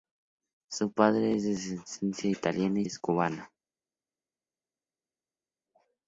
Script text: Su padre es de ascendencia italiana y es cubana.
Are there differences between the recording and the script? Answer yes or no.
no